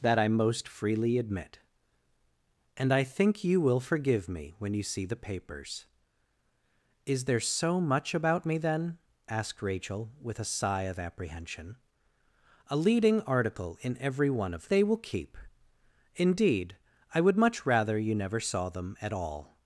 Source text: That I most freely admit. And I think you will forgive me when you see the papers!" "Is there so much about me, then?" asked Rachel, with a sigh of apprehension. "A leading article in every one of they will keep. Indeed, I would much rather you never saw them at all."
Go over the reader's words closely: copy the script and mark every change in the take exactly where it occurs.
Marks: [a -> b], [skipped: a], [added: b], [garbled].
That I most freely admit. And I think you will forgive me when you see the papers!" "Is there so much about me, then?" asked Rachel, with a sigh of apprehension. "A leading article in every one of they will keep. Indeed, I would much rather you never saw them at all."